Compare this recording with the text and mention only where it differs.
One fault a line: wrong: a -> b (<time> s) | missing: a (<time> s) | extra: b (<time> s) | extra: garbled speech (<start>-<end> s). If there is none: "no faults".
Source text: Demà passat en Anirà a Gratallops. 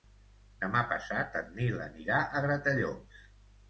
extra: Nil (1.6 s)